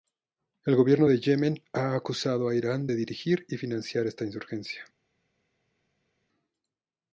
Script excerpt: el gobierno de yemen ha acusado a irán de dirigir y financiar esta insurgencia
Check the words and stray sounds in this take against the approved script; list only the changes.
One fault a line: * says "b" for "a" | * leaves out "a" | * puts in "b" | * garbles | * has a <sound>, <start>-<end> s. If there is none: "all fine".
all fine